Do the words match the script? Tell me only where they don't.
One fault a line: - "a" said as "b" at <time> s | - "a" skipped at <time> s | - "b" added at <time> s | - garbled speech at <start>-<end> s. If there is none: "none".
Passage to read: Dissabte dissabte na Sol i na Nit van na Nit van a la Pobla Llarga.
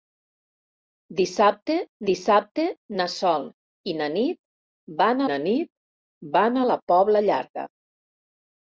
none